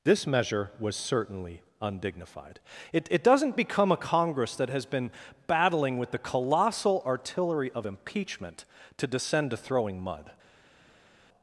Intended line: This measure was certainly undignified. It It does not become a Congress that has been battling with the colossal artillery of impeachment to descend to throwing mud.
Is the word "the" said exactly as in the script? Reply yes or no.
yes